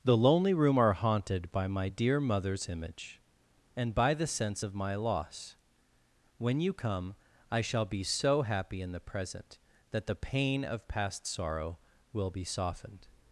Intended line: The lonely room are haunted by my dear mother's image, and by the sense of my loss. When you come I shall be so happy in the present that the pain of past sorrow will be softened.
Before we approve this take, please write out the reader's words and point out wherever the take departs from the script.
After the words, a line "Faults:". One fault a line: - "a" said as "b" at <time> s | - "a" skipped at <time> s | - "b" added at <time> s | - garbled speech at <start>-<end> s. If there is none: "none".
The lonely room are haunted by my dear mother's image, and by the sense of my loss. When you come I shall be so happy in the present that the pain of past sorrow will be softened.
Faults:
none